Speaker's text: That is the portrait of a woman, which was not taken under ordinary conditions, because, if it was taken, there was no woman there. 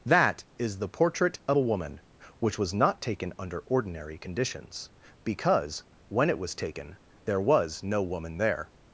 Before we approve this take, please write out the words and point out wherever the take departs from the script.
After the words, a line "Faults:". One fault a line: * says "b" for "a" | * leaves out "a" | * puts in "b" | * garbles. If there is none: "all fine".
That is the portrait of a woman, which was not taken under ordinary conditions, because, when it was taken, there was no woman there.
Faults:
* says "when" for "if"